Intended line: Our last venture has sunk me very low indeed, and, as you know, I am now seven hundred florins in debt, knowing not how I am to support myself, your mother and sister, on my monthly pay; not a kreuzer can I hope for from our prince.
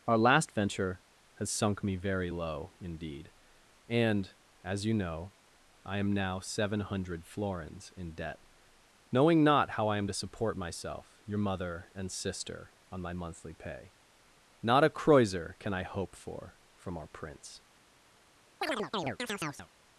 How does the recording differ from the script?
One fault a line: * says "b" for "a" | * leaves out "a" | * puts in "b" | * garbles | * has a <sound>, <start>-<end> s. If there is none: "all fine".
* has a chirp, 18.6-19.7 s